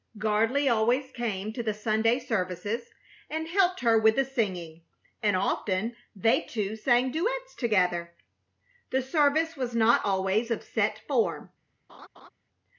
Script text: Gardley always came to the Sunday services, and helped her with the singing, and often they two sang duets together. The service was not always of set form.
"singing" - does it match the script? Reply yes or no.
yes